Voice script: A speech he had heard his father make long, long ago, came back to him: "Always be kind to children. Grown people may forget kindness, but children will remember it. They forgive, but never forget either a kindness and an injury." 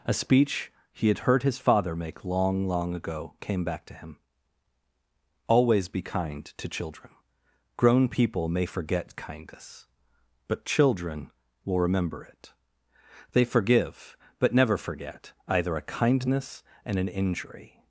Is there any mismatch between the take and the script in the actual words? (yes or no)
no